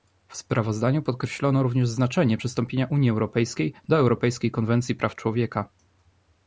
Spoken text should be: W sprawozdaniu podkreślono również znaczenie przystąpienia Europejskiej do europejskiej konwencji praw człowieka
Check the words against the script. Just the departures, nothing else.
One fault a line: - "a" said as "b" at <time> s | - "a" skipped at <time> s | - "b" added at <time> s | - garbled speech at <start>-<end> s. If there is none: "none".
- "Unii" added at 2.9 s